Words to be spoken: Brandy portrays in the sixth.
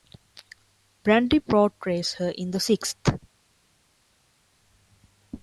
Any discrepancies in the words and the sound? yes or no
yes